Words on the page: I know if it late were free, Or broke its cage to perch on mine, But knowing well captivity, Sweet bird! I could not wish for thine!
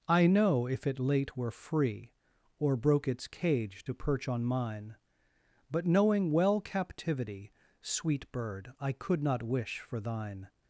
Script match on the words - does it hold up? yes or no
yes